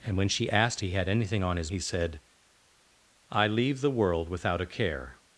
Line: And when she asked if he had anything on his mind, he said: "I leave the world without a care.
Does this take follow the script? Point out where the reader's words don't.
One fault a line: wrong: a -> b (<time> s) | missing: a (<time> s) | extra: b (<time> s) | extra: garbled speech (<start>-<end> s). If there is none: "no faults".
missing: if (0.8 s)
missing: mind (1.7 s)